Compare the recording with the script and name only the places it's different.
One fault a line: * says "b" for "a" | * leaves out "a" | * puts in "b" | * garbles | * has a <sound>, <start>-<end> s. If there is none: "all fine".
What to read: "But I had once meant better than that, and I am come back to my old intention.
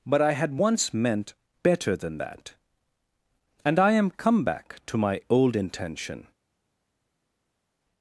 all fine